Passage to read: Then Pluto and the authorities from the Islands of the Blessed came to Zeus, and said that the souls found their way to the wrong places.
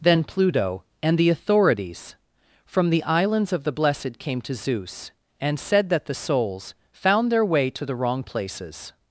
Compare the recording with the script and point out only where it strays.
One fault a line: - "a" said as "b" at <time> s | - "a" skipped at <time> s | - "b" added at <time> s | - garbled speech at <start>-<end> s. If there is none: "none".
none